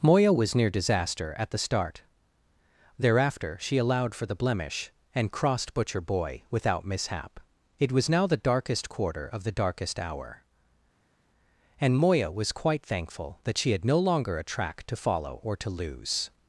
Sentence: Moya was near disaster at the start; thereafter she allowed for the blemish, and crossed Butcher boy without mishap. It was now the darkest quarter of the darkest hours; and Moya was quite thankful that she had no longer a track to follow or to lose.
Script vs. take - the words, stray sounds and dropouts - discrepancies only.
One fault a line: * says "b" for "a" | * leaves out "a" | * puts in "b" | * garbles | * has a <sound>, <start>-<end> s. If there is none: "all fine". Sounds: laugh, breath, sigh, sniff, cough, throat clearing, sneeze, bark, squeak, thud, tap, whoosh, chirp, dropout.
* says "hour" for "hours"